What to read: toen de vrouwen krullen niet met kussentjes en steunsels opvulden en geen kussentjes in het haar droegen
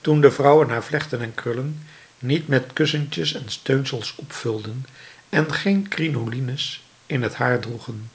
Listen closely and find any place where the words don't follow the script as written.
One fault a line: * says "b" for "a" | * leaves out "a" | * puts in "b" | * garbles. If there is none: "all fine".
* puts in "haar vlechten en"
* says "crinolines" for "kussentjes"